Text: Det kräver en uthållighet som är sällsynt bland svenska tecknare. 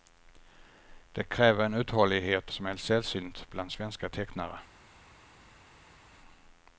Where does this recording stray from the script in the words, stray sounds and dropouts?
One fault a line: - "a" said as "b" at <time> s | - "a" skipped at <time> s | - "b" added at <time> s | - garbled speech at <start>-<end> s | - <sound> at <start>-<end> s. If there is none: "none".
none